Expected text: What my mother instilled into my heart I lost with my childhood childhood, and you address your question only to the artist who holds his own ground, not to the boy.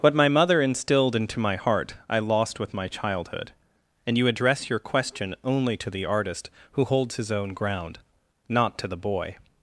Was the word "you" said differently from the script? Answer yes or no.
no